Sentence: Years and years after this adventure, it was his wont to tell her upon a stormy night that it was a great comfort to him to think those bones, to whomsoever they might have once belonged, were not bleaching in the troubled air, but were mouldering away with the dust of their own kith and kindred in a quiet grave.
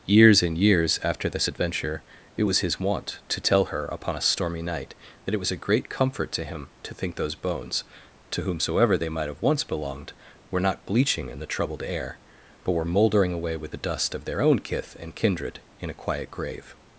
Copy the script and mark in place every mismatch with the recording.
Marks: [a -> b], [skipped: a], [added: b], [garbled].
Years and years after this adventure, it was his wont to tell her upon a stormy night that it was a great comfort to him to think those bones, to whomsoever they might have once belonged, were not bleaching in the troubled air, but were mouldering away with the dust of their own kith and kindred in a quiet grave.